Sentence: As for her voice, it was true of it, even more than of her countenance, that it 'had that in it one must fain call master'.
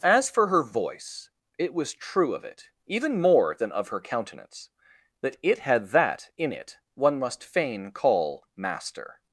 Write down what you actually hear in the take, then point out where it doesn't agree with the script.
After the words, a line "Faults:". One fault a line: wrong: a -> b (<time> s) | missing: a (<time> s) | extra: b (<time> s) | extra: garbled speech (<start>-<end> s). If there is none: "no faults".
As for her voice, it was true of it, even more than of her countenance, that it 'had that in it one must fain call master'.
Faults:
no faults